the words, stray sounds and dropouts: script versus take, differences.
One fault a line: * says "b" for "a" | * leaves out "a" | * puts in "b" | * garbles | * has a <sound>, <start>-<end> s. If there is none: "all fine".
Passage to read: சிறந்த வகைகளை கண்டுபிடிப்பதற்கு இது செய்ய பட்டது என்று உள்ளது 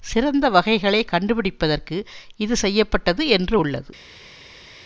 all fine